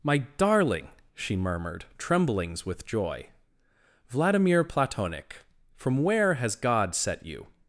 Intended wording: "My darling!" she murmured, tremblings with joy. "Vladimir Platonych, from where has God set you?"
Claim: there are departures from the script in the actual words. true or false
false